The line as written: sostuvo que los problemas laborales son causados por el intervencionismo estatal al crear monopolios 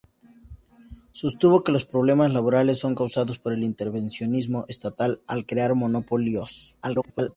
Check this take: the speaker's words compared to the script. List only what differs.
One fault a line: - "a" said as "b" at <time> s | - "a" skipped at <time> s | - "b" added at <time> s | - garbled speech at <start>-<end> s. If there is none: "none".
- garbled speech at 6.8-7.4 s